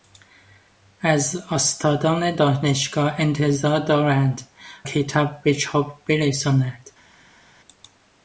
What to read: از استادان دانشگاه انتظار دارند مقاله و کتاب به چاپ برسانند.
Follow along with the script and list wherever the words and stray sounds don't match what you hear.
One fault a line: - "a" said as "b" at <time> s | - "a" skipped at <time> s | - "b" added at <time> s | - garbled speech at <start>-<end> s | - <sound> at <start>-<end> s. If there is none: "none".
- "مقاله و" skipped at 4.4 s